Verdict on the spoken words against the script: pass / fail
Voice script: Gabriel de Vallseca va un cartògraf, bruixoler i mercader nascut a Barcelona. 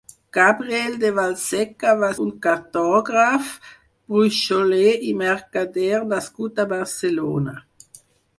pass